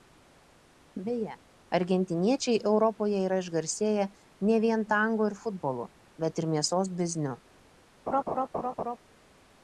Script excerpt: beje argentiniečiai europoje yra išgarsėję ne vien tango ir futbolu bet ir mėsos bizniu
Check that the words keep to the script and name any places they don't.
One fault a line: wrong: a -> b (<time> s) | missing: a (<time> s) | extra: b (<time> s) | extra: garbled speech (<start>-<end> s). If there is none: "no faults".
no faults